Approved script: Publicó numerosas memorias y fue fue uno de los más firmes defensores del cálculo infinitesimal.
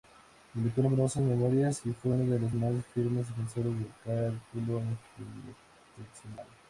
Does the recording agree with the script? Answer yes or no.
no